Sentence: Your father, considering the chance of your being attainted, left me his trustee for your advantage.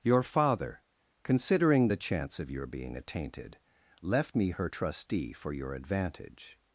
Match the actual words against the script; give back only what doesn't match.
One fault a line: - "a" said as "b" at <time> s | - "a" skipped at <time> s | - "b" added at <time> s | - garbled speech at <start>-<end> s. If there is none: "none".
- "his" said as "her" at 4.5 s